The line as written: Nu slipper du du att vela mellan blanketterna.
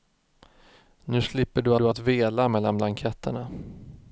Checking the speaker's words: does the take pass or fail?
pass